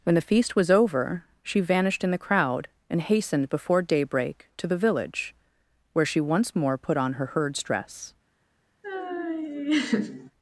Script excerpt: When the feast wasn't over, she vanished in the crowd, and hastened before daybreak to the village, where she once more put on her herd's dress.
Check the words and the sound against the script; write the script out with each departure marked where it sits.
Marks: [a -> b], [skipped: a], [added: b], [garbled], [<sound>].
When the feast [wasn't -> was] over, she vanished in the crowd, and hastened before daybreak to the village, where she once more put on her herd's dress. [laugh]